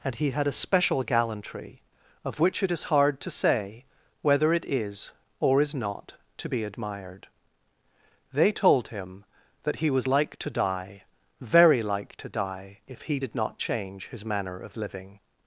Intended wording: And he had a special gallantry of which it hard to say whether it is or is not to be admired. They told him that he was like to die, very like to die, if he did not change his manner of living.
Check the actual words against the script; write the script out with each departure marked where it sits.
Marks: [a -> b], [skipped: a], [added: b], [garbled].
And he had a special gallantry of which it [added: is] hard to say whether it is or is not to be admired. They told him that he was like to die, very like to die, if he did not change his manner of living.